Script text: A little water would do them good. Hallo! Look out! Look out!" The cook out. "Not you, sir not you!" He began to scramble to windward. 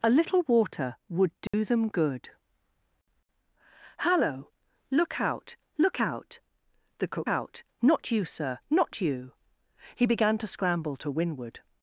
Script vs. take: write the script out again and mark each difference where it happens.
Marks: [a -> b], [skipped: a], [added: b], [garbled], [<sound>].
A little water would do [dropout] them good. Hallo! Look out! Look out!" The cook out. "Not you, sir not you!" He began to scramble to windward.